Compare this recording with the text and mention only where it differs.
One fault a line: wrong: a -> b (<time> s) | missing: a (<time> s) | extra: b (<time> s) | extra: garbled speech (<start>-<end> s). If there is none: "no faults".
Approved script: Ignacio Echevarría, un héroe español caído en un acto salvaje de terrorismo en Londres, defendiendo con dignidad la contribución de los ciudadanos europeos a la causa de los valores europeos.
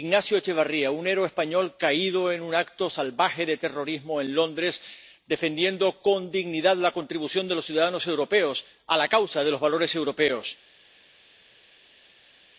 no faults